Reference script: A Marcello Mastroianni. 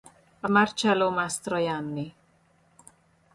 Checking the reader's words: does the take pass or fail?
pass